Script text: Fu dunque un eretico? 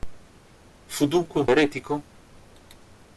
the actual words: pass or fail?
pass